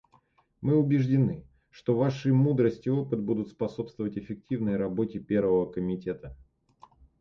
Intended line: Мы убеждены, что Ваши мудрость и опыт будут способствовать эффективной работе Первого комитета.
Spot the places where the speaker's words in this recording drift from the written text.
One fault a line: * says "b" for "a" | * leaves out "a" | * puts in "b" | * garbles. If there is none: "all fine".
all fine